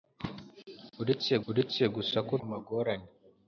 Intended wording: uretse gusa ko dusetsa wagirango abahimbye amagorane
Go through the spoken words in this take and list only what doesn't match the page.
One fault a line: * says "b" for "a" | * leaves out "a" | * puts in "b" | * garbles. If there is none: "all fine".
* puts in "uretse"
* leaves out "dusetsa wagirango abahimbye"